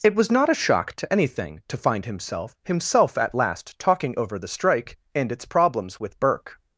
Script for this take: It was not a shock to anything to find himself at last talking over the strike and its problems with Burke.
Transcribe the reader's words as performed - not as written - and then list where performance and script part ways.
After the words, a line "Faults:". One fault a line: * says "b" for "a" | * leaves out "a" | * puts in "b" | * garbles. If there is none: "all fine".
It was not a shock to anything to find himself himself at last talking over the strike and its problems with Burke.
Faults:
* puts in "himself"